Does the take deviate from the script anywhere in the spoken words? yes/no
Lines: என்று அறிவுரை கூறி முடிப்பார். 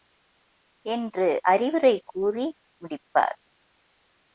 no